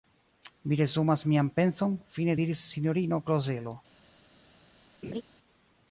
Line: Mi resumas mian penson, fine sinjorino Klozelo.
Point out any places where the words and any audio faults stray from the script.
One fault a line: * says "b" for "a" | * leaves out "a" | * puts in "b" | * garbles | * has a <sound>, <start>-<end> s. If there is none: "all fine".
* puts in "diris"
* has a laugh, 5.0-5.2 s